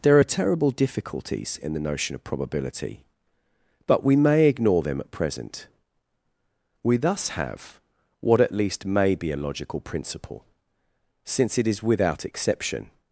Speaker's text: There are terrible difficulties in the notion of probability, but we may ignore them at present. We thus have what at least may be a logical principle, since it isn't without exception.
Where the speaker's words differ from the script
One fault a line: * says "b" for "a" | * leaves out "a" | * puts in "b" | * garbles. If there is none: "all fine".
* says "is" for "isn't"